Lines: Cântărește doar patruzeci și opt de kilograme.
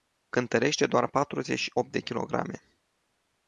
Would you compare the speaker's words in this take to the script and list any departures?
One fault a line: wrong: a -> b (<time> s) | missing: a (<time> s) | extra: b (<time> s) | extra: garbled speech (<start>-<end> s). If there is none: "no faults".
no faults